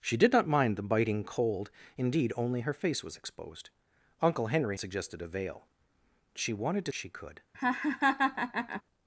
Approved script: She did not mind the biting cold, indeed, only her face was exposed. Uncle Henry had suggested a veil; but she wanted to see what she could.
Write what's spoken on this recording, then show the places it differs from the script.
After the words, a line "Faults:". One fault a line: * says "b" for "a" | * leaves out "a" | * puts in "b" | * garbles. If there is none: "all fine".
She did not mind the biting cold, indeed, only her face was exposed. Uncle Henry suggested a veil; she wanted to she could.
Faults:
* leaves out "had"
* leaves out "but"
* leaves out "see what"